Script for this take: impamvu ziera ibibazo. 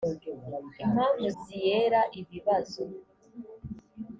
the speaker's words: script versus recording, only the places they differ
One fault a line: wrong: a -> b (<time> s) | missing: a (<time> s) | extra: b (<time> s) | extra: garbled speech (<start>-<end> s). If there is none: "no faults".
no faults